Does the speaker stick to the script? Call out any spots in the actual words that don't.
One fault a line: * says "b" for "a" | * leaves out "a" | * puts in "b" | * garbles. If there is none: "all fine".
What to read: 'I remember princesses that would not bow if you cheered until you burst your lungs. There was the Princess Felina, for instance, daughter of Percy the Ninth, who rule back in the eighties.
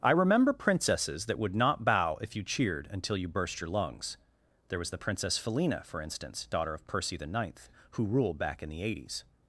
* says "ruled" for "rule"